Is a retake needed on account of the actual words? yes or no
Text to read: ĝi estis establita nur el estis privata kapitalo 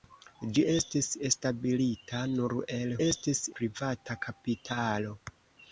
no